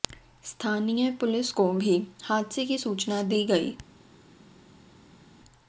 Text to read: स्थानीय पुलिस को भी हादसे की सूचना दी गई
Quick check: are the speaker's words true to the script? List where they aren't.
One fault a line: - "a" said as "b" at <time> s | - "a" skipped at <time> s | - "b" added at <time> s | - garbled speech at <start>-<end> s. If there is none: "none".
none